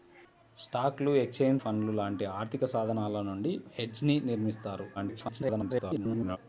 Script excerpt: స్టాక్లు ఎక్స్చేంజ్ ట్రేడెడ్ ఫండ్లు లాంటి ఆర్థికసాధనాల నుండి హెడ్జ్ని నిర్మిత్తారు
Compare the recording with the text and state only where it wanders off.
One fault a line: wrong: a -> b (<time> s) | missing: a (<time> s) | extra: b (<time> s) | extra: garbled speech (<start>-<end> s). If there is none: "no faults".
missing: ట్రేడెడ్ (1.6 s)
extra: garbled speech (4.9-6.4 s)